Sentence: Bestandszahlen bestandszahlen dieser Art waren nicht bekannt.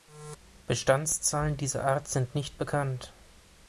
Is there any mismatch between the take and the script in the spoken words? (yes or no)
yes